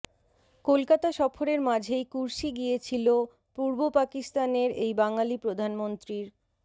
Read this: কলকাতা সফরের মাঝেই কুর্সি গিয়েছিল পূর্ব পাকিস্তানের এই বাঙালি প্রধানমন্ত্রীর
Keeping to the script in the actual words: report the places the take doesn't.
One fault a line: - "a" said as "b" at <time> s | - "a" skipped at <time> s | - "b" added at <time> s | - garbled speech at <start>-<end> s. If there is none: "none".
none